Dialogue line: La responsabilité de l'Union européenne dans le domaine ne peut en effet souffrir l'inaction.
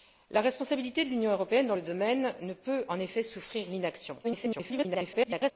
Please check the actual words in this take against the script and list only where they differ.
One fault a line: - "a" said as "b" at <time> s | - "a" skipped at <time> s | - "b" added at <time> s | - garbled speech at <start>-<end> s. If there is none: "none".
- garbled speech at 4.2-5.5 s